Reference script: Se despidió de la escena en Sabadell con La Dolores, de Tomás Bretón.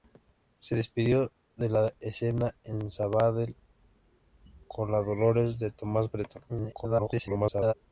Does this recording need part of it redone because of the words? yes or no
yes